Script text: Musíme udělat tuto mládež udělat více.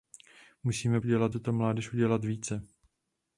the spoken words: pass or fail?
pass